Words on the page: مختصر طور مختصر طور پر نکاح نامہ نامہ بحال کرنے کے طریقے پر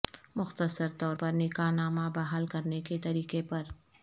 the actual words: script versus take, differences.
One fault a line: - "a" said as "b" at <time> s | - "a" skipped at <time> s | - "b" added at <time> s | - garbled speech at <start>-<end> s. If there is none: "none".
- "مختصر طور" skipped at 1.1 s
- "نامہ" skipped at 2.1 s